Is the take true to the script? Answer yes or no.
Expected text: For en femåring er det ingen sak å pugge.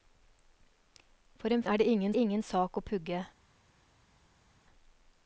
no